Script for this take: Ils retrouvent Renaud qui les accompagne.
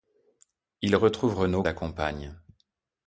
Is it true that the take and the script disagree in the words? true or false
true